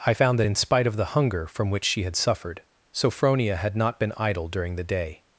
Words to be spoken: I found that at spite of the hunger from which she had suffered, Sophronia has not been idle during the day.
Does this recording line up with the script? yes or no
no